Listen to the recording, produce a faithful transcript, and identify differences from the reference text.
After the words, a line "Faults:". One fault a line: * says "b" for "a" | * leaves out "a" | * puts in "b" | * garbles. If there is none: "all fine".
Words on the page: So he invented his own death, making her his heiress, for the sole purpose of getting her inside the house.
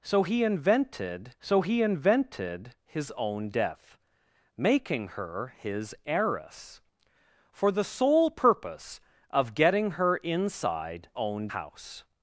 So he invented so he invented his own death, making her his heiress, for the sole purpose of getting her inside own house.
Faults:
* puts in "so he invented"
* says "own" for "the"